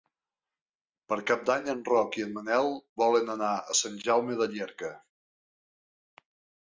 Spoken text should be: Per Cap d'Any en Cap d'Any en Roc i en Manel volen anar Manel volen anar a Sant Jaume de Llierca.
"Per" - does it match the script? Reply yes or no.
yes